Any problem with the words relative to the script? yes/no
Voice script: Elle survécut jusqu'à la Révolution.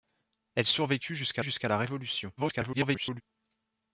yes